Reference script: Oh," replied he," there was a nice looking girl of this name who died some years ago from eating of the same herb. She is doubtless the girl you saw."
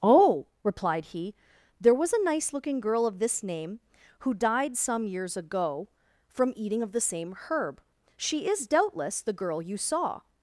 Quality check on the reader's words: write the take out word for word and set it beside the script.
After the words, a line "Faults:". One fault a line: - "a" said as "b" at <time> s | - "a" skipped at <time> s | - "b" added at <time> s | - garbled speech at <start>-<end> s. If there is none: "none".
Oh," replied he," there was a nice looking girl of this name who died some years ago from eating of the same herb. She is doubtless the girl you saw."
Faults:
none